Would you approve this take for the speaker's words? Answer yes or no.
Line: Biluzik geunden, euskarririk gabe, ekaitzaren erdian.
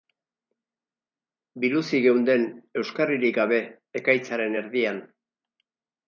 yes